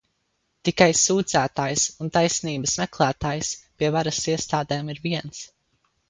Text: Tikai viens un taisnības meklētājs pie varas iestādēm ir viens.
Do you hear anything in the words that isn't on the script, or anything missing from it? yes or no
yes